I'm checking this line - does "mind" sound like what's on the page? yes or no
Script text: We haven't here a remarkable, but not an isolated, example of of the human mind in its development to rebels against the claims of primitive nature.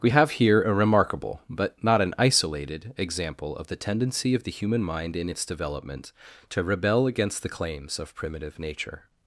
yes